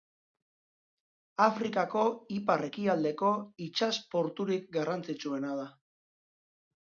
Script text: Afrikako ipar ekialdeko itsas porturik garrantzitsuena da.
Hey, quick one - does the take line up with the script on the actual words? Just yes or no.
yes